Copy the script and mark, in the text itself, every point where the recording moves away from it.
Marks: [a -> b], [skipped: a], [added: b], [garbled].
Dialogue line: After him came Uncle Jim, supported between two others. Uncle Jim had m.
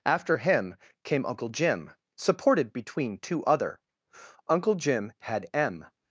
After him came Uncle Jim, supported between two [others. -> other] Uncle Jim had m.